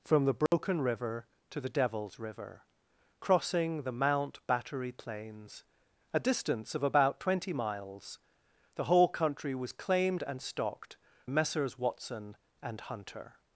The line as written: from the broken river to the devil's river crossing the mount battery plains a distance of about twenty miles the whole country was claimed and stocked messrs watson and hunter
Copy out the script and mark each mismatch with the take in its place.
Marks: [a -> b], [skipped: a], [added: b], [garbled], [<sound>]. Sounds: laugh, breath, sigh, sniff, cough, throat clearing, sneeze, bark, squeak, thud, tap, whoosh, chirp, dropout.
from the broken [dropout] river to the devil's river crossing the mount battery plains a distance of about twenty miles the whole country was claimed and stocked messrs watson and hunter